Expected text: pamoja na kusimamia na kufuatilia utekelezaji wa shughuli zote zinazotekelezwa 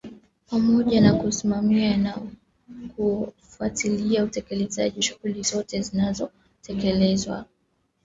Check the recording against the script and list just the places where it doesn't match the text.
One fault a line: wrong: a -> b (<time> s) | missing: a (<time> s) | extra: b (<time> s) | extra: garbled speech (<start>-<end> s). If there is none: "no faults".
missing: wa (5.0 s)